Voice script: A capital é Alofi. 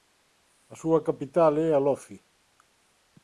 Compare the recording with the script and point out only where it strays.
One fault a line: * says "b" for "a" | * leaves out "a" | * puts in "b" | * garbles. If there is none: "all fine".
* puts in "súa"